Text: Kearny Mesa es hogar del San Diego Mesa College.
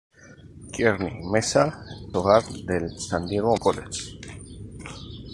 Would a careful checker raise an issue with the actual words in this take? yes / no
yes